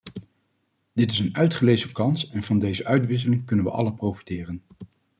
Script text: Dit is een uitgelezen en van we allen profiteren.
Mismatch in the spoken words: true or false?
true